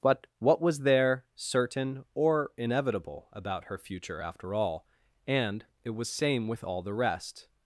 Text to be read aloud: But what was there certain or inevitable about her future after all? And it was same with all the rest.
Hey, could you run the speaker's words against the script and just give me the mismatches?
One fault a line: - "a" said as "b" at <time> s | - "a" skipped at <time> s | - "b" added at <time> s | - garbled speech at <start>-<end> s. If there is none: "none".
none